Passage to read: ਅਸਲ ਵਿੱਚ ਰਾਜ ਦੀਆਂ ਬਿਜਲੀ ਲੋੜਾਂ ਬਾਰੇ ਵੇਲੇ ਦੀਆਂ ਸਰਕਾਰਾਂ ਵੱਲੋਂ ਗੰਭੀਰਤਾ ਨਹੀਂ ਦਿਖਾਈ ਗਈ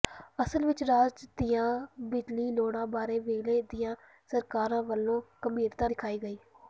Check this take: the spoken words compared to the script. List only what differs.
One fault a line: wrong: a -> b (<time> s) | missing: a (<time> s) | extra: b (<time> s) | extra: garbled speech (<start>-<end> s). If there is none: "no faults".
missing: ਨਹੀਂ (5.9 s)